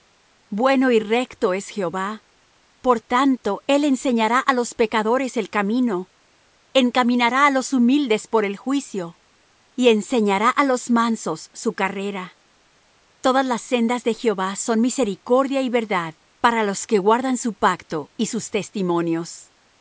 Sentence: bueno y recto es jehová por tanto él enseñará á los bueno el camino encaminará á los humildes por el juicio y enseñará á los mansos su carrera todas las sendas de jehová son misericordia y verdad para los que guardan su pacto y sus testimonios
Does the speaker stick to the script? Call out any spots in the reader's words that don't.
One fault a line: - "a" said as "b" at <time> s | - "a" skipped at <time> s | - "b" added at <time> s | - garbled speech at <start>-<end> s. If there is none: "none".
- "bueno" said as "pecadores" at 4.7 s